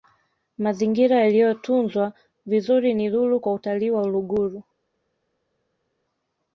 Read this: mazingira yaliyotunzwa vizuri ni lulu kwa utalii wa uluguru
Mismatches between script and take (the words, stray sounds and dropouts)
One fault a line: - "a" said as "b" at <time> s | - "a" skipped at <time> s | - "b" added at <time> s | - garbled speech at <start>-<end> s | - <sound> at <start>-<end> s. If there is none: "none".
none